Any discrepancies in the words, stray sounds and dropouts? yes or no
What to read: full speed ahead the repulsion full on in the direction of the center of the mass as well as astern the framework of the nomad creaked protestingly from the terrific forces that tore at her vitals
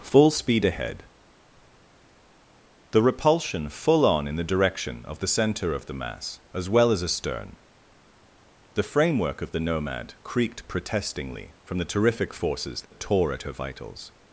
yes